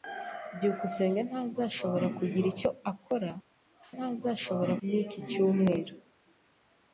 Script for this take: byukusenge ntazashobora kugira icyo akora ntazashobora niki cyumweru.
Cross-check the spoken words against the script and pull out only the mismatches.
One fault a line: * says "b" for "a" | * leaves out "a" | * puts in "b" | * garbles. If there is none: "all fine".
all fine